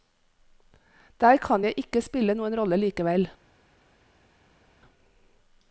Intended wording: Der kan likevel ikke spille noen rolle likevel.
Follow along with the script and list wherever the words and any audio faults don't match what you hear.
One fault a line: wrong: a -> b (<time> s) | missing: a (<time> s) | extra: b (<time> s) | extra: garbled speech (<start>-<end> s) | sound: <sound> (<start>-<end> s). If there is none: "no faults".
wrong: likevel -> jeg (1.6 s)